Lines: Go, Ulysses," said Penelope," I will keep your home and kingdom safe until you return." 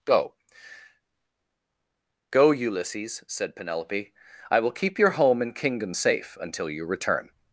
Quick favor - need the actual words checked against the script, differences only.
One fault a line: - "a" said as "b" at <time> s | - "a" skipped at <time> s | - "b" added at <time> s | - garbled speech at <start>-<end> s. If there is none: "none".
- "go" added at 2.3 s